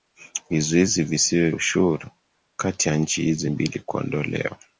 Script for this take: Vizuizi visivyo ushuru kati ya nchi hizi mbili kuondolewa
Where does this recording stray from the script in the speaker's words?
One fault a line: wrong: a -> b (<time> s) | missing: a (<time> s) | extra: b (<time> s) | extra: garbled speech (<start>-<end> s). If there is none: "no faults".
no faults